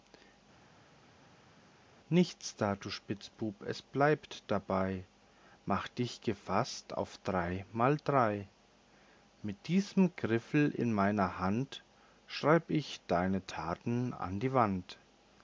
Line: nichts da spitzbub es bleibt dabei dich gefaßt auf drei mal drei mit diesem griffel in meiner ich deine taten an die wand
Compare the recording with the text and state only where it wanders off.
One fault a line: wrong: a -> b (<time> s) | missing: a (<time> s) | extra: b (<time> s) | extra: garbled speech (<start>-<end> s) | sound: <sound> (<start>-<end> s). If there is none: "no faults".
extra: du (2.7 s)
extra: mach (5.7 s)
extra: hand schreib (11.4 s)